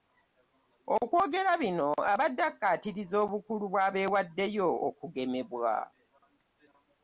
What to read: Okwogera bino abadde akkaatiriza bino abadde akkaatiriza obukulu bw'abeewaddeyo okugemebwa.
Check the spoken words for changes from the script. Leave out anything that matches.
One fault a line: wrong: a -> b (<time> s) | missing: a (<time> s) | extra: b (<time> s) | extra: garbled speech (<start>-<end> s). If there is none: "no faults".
missing: bino abadde akkaatiriza (3.1 s)